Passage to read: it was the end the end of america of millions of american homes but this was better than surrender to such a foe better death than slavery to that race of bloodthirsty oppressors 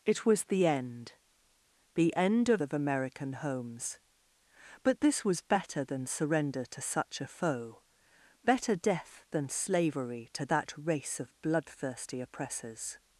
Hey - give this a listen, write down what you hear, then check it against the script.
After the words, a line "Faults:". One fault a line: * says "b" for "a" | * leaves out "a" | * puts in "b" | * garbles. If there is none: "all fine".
it was the end the end of of american homes but this was better than surrender to such a foe better death than slavery to that race of bloodthirsty oppressors
Faults:
* leaves out "america of millions"